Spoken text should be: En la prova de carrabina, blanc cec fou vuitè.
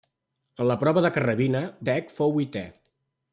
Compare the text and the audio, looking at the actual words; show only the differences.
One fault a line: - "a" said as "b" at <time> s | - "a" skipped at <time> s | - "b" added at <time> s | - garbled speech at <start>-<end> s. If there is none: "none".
- "blanc" skipped at 1.6 s